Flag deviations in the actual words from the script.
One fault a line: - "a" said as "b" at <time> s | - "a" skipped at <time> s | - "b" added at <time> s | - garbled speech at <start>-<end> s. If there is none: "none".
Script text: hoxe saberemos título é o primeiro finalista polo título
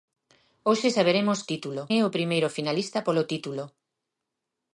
none